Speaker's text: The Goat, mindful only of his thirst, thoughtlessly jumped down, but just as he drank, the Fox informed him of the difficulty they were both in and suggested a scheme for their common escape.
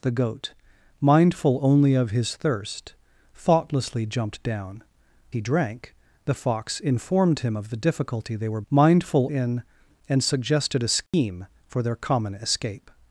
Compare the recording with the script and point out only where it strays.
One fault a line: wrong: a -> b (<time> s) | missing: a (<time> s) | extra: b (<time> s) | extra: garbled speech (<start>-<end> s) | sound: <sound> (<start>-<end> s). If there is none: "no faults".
missing: but just as (4.8 s)
wrong: both -> mindful (8.7 s)
sound: dropout (11.1-11.1 s)